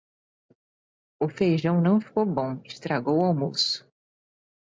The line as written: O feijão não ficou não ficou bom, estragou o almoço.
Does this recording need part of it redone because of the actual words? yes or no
yes